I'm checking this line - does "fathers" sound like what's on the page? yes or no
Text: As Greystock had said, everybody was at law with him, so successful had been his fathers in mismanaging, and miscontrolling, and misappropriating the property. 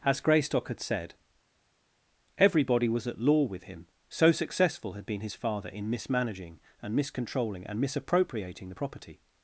no